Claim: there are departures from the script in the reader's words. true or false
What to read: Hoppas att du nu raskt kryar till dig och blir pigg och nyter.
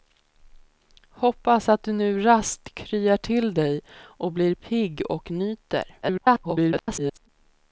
true